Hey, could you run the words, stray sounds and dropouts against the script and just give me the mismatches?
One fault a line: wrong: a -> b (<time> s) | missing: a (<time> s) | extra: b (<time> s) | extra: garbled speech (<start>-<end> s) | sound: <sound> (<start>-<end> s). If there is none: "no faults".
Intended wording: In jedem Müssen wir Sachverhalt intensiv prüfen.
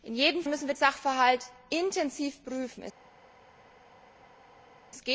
no faults